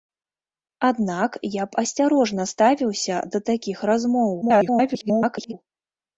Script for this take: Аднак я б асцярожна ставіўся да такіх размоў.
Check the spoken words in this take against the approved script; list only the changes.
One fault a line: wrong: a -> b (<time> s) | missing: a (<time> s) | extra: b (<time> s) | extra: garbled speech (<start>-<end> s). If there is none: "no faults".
extra: garbled speech (4.4-5.5 s)